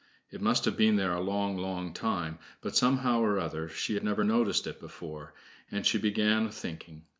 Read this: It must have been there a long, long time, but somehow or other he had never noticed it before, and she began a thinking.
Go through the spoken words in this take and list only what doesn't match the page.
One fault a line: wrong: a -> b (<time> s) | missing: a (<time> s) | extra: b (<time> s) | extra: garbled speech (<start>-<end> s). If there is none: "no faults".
wrong: he -> she (3.7 s)